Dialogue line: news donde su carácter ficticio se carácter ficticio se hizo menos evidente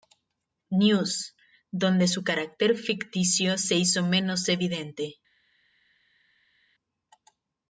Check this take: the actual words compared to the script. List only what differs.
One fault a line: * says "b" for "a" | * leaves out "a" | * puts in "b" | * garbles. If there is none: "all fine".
* leaves out "carácter ficticio se"